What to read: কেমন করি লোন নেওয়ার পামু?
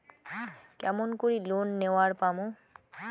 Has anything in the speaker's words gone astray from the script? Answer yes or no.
no